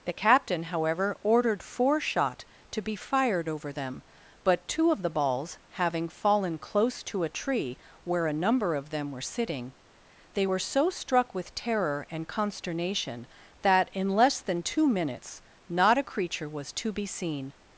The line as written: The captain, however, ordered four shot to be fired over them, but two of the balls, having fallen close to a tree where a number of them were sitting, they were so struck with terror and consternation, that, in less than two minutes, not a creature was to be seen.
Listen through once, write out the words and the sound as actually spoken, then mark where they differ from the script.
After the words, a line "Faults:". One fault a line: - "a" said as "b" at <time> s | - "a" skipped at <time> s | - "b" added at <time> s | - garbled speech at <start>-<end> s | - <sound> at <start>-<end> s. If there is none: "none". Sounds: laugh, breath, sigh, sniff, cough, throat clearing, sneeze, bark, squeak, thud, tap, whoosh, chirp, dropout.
The captain, however, ordered four shot to be fired over them, but two of the balls, having fallen close to a tree where a number of them were sitting, they were so struck with terror and consternation, that, in less than two minutes, not a creature was to be seen.
Faults:
none